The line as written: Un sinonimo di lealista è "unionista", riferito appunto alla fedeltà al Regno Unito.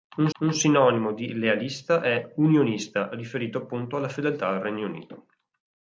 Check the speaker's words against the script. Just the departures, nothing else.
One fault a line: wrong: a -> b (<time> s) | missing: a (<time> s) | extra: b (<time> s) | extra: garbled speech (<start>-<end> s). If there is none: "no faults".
extra: un (0.4 s)